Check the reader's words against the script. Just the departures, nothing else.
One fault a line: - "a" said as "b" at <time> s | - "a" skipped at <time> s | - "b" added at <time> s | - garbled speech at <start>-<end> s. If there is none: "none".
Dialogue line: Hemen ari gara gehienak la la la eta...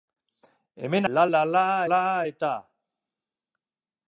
- "ari gara gehienak" said as "la" at 1.1 s